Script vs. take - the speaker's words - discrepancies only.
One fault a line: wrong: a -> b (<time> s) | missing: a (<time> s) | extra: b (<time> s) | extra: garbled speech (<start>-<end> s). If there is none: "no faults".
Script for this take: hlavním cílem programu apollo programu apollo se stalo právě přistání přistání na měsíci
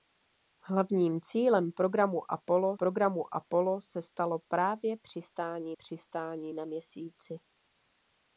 no faults